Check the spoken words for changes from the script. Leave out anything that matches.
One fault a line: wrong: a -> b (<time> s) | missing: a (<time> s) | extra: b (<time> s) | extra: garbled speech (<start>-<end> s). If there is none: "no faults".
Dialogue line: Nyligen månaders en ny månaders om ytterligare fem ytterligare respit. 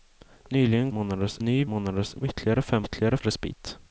no faults